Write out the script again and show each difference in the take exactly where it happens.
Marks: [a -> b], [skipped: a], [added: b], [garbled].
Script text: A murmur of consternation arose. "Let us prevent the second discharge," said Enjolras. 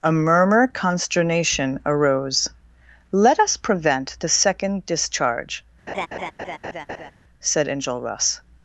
A murmur [skipped: of] consternation arose. "Let us prevent the second discharge," said Enjolras.